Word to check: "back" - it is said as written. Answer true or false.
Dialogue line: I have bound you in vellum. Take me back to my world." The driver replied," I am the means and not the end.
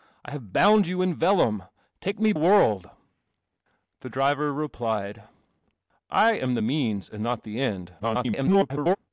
false